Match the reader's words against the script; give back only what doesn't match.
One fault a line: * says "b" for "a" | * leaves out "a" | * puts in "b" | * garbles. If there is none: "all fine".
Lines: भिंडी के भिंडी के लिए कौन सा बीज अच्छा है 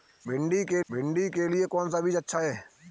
all fine